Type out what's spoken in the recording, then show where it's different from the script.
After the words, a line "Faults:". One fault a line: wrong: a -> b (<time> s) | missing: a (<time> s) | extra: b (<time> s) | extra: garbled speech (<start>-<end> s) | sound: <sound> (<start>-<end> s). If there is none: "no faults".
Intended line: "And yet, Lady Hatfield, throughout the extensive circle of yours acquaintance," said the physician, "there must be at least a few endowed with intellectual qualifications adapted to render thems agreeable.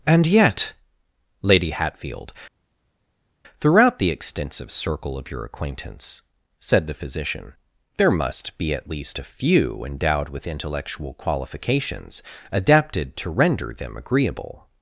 "And yet, Lady Hatfield, throughout the extensive circle of your acquaintance," said the physician, "there must be at least a few endowed with intellectual qualifications adapted to render them agreeable.
Faults:
wrong: yours -> your (5.3 s)
wrong: thems -> them (13.7 s)